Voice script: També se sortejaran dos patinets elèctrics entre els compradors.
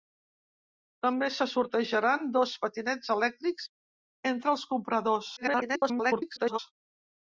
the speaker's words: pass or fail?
fail